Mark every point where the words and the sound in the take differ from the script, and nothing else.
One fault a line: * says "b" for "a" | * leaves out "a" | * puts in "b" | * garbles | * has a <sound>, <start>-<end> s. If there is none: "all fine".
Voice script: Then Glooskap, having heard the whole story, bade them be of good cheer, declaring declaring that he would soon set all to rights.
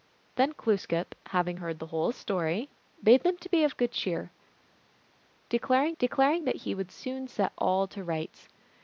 all fine